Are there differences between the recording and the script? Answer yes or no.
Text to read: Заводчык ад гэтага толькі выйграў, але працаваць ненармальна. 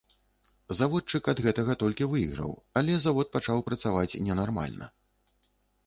yes